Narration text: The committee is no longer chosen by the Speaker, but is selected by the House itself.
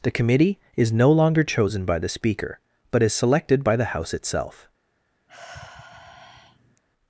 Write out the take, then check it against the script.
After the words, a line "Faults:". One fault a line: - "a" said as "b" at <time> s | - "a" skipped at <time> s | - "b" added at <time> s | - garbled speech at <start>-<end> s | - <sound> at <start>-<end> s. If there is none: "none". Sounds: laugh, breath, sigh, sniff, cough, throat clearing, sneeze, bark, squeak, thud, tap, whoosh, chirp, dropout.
The committee is no longer chosen by the Speaker, but is selected by the House itself.
Faults:
- sigh at 5.3-6.8 s